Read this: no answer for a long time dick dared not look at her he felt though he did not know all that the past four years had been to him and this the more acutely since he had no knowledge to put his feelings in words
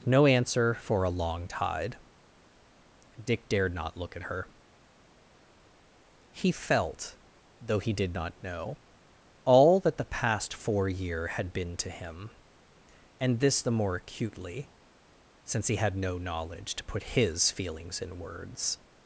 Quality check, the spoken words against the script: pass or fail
fail